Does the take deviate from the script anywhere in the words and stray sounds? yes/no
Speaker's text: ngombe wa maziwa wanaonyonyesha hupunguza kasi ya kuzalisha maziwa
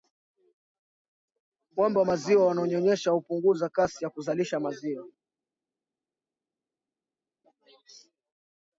no